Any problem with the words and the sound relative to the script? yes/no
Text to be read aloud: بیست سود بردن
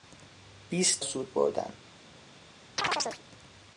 yes